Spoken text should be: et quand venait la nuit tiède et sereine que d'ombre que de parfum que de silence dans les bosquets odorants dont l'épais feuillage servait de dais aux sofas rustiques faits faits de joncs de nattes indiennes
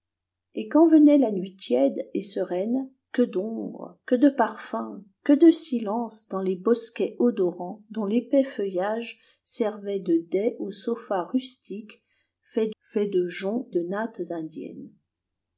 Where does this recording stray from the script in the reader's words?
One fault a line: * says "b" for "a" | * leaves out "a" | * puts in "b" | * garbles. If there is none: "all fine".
all fine